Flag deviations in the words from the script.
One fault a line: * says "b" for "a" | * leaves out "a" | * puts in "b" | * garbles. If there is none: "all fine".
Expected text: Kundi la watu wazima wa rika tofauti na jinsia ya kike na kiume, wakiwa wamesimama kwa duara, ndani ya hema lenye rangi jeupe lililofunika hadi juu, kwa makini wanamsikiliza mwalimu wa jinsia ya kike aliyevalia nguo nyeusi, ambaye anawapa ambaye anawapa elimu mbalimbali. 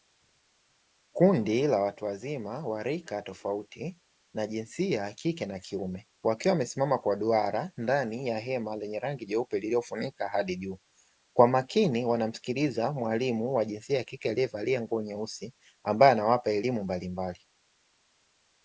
* leaves out "ambaye anawapa"